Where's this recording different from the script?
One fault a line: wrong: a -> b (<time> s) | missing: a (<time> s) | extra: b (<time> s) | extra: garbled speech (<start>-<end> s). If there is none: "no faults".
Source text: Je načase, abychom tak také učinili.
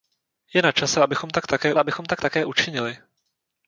extra: abychom tak také (1.8 s)